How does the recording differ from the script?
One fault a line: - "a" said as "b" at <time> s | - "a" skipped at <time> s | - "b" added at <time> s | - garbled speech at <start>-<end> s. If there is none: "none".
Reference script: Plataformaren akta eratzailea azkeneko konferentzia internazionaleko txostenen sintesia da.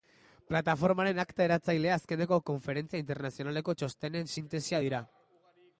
- "da" said as "dira" at 4.8 s